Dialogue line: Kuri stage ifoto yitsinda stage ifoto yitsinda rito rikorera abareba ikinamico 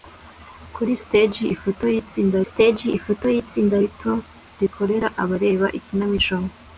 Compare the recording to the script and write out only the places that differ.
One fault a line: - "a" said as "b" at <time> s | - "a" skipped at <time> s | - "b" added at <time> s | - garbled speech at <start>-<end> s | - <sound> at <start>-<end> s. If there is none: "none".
none